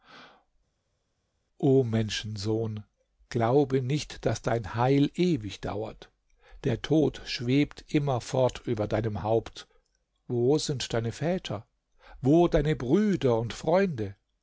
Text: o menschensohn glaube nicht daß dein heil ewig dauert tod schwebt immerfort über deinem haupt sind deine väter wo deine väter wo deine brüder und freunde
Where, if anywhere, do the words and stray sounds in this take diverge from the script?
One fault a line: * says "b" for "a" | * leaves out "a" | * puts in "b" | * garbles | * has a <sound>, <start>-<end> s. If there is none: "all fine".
* puts in "der"
* puts in "wo"
* leaves out "väter wo deine"